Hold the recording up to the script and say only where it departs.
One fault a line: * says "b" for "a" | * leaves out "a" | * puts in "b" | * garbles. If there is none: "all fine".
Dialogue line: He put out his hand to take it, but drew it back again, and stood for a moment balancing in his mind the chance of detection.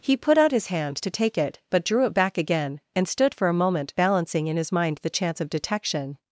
all fine